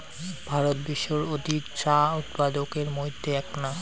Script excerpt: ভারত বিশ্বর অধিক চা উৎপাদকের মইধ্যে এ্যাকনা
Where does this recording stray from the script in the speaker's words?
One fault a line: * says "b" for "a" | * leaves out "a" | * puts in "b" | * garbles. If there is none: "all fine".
all fine